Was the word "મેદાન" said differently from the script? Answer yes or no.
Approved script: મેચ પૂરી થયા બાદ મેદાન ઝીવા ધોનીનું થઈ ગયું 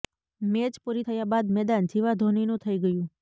no